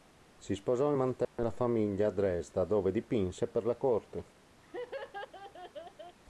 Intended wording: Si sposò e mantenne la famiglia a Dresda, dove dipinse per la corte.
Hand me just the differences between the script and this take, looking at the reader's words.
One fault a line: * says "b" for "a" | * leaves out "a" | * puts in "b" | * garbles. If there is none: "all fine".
all fine